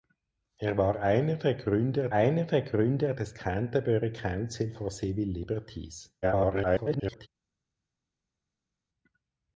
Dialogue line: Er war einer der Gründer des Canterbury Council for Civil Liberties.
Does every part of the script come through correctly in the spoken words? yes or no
no